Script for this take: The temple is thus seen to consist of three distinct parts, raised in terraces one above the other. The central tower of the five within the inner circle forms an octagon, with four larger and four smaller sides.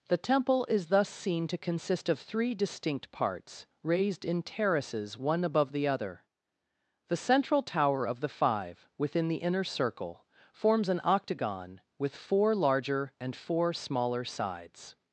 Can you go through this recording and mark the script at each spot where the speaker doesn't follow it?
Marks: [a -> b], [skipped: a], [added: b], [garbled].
The temple is thus seen to consist of three distinct parts, raised in terraces one above the other. The central tower of the five within the inner circle forms an octagon, with four larger and four smaller sides.